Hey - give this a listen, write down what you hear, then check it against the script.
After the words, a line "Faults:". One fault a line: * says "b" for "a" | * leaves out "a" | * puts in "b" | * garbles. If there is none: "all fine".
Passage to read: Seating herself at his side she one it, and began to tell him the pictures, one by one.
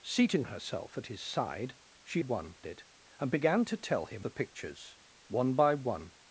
Seating herself at his side she one it, and began to tell him the pictures, one by one.
Faults:
all fine